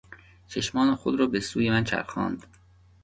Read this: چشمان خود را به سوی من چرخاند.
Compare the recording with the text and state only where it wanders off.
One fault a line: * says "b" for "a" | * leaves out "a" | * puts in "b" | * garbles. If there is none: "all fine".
all fine